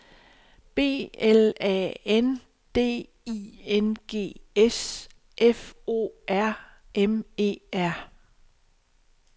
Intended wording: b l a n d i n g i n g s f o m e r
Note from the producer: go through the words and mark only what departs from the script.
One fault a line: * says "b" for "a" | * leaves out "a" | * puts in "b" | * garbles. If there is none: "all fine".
* leaves out "i n g"
* puts in "r"